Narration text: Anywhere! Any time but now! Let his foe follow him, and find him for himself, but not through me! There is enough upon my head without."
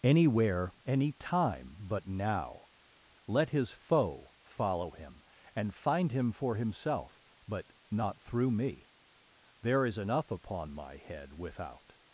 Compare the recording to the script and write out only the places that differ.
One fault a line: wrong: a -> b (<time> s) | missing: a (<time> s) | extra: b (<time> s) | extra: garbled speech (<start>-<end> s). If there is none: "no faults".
no faults